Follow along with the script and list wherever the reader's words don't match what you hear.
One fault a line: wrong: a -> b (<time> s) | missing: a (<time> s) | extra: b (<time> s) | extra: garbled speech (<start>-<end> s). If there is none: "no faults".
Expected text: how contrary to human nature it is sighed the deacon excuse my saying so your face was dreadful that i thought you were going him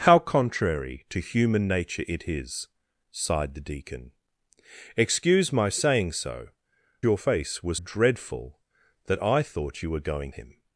no faults